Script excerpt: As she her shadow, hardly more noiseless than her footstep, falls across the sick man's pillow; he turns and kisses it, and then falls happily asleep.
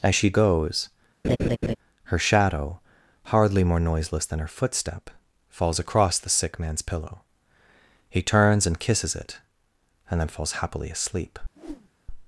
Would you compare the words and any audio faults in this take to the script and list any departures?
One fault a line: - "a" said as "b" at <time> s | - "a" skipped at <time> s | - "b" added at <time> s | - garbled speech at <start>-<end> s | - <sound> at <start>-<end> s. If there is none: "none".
- "goes" added at 0.3 s
- laugh at 1.2-1.8 s
- whoosh at 11.5-11.9 s